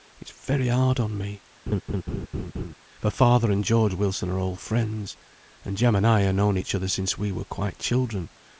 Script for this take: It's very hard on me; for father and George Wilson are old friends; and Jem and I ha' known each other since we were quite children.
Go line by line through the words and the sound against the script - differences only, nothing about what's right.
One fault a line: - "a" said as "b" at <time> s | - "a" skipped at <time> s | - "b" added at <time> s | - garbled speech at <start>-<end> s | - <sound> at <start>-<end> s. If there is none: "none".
- laugh at 1.7-2.7 s